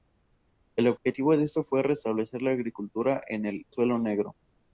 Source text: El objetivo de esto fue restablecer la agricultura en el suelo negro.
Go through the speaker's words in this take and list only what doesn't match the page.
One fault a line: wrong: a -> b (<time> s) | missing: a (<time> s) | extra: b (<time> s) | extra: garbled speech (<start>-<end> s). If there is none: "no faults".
no faults